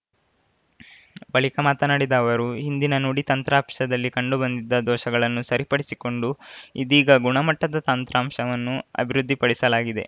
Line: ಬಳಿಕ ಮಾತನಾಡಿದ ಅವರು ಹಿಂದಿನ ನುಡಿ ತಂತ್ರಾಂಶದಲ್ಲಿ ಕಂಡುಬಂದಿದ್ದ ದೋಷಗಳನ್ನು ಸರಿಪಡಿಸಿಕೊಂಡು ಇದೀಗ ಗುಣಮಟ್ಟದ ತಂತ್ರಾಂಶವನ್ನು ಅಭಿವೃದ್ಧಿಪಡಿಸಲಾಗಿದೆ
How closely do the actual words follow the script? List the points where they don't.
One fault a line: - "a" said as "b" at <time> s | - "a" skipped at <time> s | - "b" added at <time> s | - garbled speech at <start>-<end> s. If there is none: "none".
none